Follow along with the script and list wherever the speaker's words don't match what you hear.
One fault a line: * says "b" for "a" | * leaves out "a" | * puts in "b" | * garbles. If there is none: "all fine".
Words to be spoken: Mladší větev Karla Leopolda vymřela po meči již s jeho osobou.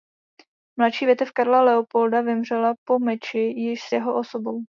all fine